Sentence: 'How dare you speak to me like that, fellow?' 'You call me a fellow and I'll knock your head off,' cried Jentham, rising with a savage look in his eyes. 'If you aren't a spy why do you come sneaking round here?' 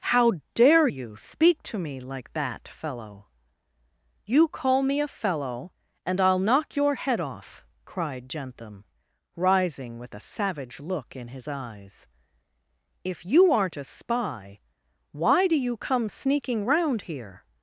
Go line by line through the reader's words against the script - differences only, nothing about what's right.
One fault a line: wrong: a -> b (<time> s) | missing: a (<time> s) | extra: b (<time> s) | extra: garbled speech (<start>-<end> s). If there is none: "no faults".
no faults